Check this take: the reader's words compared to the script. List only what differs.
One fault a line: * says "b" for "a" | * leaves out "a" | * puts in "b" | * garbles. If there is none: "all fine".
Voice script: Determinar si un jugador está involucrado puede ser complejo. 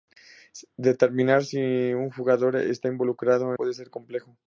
all fine